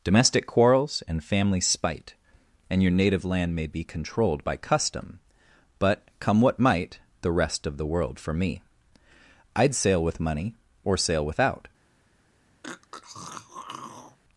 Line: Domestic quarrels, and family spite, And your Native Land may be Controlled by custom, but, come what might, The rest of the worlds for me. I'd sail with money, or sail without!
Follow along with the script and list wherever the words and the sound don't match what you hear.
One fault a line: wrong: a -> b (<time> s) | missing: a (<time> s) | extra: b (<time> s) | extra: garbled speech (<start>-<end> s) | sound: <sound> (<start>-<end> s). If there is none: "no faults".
wrong: worlds -> world (7.8 s)
sound: throat clearing (12.6-14.2 s)